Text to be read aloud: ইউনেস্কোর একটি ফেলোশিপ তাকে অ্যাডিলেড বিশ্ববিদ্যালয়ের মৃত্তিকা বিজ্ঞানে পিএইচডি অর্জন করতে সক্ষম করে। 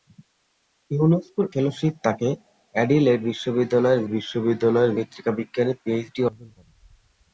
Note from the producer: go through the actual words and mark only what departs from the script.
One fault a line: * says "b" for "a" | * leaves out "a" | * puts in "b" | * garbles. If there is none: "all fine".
* leaves out "একটি"
* puts in "বিশ্ববিদ্যালয়ের"
* leaves out "করতে সক্ষম"